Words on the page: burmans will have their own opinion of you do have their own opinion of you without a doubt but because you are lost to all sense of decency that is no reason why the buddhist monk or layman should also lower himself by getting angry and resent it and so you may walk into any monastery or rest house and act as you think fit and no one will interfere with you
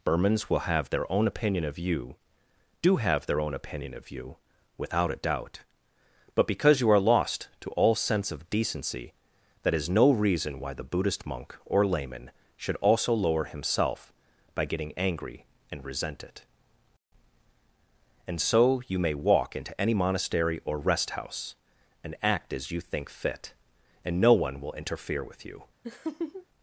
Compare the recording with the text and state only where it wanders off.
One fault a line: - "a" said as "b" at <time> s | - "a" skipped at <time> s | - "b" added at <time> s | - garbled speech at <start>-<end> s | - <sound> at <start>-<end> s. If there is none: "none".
- laugh at 25.8-26.5 s